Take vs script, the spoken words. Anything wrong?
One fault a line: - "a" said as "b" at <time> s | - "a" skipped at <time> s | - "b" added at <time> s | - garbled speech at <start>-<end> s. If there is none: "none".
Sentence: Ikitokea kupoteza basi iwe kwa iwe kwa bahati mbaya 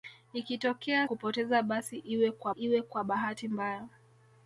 none